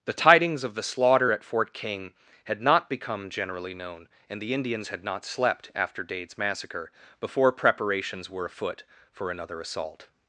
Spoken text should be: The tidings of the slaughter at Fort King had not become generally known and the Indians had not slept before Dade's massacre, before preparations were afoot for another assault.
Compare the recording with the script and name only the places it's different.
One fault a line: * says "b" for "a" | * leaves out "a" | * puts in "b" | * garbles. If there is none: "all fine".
* says "after" for "before"